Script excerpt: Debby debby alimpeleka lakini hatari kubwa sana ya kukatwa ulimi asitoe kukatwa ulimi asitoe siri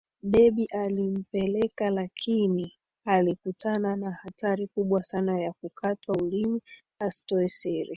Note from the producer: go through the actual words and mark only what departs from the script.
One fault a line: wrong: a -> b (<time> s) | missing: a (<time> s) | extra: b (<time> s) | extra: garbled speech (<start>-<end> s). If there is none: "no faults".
missing: debby (0.7 s)
extra: alikutana na (3.0 s)
missing: kukatwa ulimi asitoe (7.5 s)